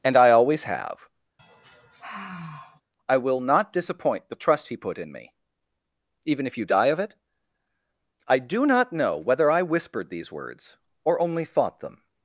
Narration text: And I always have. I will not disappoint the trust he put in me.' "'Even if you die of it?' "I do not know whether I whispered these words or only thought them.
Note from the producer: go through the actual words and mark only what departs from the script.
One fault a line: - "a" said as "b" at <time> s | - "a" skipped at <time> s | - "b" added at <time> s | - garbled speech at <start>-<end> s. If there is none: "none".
none